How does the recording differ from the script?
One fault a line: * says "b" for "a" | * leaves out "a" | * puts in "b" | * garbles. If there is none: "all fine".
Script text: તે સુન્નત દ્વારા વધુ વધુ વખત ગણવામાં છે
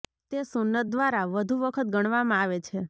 * leaves out "વધુ"
* puts in "આવે"